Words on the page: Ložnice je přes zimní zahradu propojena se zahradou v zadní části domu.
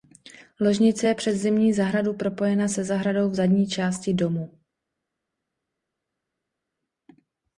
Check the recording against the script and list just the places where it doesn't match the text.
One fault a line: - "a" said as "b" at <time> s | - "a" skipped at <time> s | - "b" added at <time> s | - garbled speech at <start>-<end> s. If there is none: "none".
none